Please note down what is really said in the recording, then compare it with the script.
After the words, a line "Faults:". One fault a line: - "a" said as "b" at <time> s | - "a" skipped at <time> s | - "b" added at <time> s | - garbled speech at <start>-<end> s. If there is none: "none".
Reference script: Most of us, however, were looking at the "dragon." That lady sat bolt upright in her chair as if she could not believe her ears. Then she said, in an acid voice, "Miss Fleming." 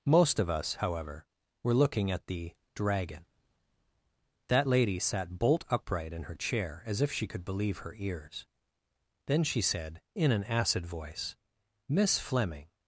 Most of us, however, were looking at the "dragon." That lady sat bolt upright in her chair as if she could believe her ears. Then she said, in an acid voice, "Miss Fleming."
Faults:
- "not" skipped at 7.4 s